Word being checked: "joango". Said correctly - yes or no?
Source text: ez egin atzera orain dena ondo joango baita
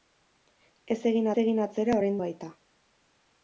no